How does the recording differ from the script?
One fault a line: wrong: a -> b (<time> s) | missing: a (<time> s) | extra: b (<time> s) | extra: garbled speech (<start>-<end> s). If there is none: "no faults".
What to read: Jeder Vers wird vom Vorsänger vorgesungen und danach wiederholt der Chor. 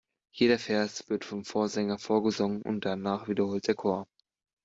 no faults